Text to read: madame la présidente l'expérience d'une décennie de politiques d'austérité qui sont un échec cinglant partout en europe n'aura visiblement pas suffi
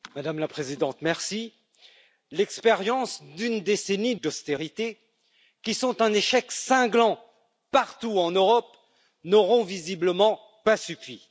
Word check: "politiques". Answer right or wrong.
wrong